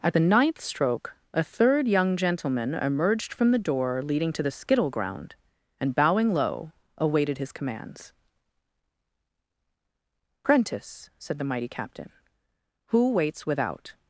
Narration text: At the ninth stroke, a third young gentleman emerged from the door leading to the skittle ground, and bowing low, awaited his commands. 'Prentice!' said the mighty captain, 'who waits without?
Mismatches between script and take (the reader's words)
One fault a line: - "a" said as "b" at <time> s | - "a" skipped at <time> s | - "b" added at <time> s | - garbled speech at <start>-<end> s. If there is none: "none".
none